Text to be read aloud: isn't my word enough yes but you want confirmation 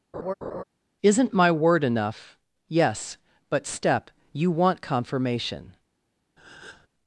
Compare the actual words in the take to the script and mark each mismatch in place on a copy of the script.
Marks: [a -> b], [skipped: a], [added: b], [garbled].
isn't my word enough yes but [added: step] you want confirmation